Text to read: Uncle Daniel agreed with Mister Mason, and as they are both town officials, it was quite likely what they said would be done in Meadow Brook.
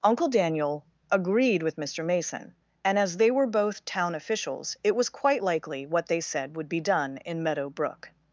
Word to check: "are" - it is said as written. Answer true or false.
false